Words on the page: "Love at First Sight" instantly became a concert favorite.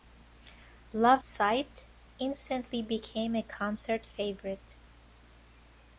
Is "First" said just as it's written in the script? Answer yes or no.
no